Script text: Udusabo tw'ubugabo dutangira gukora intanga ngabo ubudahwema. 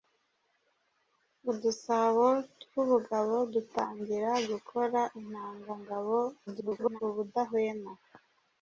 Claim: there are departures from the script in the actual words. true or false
true